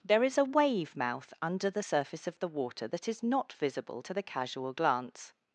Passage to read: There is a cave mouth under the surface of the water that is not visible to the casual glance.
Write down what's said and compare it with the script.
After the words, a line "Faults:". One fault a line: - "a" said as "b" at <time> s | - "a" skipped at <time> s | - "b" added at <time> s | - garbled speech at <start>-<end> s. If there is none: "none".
There is a wave mouth under the surface of the water that is not visible to the casual glance.
Faults:
- "cave" said as "wave" at 0.5 s